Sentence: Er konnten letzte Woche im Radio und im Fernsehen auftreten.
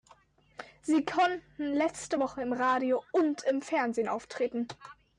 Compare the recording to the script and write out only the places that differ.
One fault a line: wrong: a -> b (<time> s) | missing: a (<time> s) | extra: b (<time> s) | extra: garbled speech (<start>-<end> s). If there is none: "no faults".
wrong: Er -> Sie (0.8 s)